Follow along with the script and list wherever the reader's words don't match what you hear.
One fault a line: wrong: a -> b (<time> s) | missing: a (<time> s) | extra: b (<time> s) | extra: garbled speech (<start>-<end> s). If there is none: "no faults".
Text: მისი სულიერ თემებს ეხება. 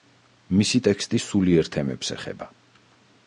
extra: ტექსტი (0.9 s)